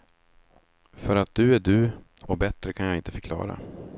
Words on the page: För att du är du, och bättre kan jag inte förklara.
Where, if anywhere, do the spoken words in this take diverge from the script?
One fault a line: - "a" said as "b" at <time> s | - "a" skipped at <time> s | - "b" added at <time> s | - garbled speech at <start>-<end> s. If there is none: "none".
none